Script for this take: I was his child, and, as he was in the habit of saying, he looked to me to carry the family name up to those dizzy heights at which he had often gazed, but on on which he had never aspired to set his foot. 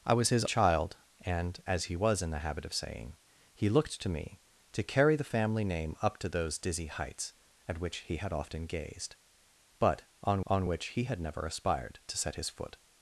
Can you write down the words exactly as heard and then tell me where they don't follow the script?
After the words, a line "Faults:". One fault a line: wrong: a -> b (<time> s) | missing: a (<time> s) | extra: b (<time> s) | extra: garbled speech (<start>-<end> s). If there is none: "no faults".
I was his child, and, as he was in the habit of saying, he looked to me to carry the family name up to those dizzy heights at which he had often gazed, but on on which he had never aspired to set his foot.
Faults:
no faults